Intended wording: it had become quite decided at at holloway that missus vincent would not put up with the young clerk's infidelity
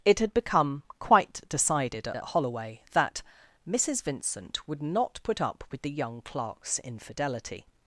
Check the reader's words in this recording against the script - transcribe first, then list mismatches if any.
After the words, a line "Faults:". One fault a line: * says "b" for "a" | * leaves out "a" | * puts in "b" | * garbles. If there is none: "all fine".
it had become quite decided at at holloway that missus vincent would not put up with the young clerk's infidelity
Faults:
all fine